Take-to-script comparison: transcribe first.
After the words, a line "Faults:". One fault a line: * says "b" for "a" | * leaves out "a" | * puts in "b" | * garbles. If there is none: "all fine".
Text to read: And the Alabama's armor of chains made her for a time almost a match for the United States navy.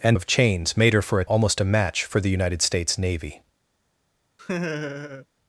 And of chains made her for a almost a match for the United States navy.
Faults:
* leaves out "the Alabama's armor"
* leaves out "time"